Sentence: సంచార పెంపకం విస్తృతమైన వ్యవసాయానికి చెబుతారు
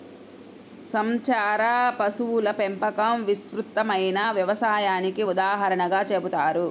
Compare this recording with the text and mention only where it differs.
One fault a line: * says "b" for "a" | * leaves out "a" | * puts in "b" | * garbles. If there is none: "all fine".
* puts in "పశువుల"
* puts in "ఉదాహరణగా"